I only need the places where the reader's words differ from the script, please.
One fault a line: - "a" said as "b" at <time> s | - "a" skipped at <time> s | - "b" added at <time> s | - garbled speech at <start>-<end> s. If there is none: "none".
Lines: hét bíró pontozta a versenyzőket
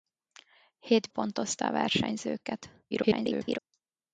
- "bíró" skipped at 1.1 s
- garbled speech at 2.9-3.6 s